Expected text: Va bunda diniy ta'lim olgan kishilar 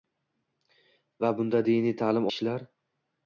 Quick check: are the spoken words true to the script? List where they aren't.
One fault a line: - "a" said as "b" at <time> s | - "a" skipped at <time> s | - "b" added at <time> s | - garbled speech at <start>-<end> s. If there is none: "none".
- "olgan" skipped at 2.3 s